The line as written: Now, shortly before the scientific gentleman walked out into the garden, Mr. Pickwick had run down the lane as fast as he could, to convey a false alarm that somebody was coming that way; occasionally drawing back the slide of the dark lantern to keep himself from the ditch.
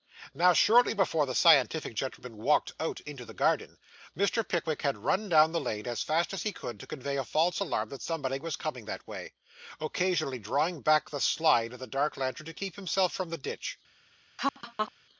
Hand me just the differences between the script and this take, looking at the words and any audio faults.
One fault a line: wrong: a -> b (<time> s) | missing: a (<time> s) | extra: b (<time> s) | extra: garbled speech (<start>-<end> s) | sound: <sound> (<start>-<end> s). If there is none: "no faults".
sound: laugh (14.4-14.9 s)